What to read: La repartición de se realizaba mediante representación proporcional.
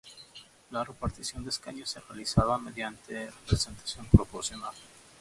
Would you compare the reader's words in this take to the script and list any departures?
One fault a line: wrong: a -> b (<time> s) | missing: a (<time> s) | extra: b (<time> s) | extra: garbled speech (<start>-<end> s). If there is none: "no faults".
extra: escaños (1.5 s)